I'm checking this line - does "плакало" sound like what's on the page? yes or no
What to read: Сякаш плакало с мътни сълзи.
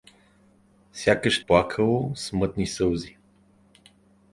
yes